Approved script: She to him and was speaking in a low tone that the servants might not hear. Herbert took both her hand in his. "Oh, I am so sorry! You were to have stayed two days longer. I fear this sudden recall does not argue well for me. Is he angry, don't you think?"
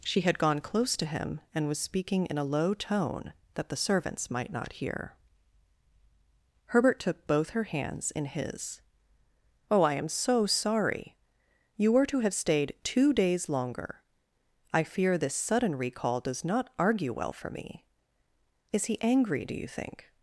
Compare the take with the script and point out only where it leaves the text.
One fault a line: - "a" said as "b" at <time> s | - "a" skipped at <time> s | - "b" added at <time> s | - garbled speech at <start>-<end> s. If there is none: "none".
- "had gone close" added at 0.2 s
- "hand" said as "hands" at 7.6 s
- "don't" said as "do" at 19.4 s